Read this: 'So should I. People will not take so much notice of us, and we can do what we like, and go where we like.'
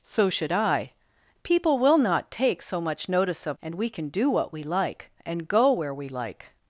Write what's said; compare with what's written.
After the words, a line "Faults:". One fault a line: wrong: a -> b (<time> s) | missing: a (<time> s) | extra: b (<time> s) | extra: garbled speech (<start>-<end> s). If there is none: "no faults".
'So should I. People will not take so much notice of and we can do what we like, and go where we like.'
Faults:
missing: us (3.6 s)